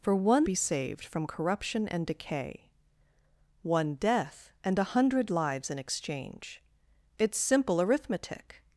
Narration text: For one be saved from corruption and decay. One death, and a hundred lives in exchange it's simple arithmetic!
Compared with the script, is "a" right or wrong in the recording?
right